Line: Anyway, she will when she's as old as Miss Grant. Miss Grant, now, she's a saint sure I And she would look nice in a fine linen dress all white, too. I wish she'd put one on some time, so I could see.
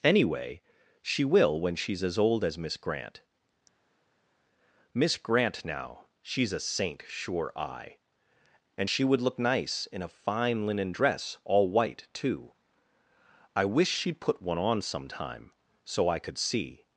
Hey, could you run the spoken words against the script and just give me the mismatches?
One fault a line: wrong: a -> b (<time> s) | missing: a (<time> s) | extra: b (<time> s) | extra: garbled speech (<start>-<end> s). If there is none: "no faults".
no faults